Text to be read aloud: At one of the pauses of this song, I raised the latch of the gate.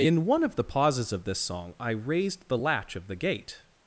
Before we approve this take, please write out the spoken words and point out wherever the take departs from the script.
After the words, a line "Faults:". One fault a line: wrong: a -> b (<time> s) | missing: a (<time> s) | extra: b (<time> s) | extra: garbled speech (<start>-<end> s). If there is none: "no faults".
In one of the pauses of this song, I raised the latch of the gate.
Faults:
wrong: At -> In (0.0 s)